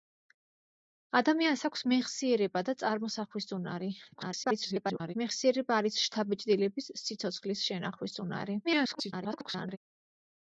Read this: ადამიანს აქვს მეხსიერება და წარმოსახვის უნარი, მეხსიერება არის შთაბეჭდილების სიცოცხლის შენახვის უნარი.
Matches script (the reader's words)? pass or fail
fail